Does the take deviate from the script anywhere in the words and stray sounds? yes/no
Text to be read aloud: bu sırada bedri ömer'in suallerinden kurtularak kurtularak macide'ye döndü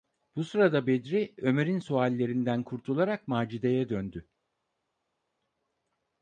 yes